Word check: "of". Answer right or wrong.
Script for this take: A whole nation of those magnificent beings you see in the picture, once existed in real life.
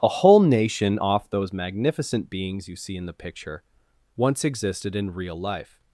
wrong